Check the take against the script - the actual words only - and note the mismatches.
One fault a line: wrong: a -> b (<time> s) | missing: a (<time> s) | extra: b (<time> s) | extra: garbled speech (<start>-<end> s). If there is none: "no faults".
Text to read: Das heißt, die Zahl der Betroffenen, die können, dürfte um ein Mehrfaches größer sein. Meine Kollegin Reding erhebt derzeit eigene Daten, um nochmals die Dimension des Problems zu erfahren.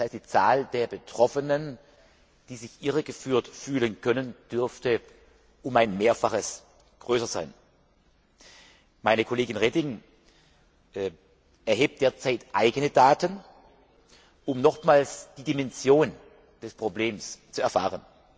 extra: sich irregeführt fühlen (2.5 s)